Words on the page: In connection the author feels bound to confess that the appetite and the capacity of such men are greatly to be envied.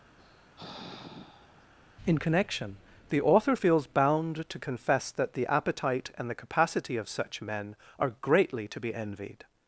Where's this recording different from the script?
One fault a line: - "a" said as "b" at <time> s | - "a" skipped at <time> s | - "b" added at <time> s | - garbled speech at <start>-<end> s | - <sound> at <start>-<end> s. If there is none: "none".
- sigh at 0.2-1.7 s